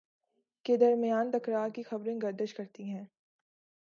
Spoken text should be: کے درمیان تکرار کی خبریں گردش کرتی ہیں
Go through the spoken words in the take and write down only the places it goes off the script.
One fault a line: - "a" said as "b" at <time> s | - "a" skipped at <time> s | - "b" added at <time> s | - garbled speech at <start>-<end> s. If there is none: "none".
none